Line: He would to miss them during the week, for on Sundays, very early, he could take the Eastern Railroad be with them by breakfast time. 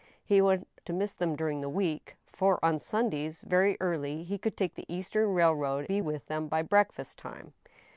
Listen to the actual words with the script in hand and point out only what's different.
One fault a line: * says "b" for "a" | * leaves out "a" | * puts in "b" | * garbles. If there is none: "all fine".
all fine